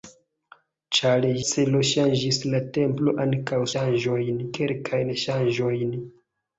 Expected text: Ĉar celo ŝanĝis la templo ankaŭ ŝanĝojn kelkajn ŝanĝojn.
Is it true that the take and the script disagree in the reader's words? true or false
false